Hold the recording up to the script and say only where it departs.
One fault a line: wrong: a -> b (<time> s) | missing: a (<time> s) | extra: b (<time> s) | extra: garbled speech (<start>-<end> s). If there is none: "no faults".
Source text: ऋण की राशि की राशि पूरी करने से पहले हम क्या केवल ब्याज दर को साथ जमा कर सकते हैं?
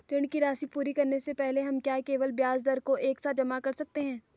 missing: की राशि (0.7 s)
extra: एक (3.0 s)